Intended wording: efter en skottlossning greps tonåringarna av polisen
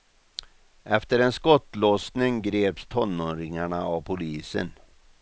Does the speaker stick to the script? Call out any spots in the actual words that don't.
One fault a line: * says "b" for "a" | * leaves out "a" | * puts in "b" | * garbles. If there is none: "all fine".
all fine